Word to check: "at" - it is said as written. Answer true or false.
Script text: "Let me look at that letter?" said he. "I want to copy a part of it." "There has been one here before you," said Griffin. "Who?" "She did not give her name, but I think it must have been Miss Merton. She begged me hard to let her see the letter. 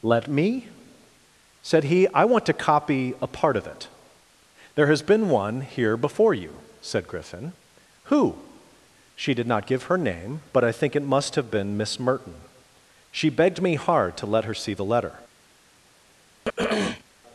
false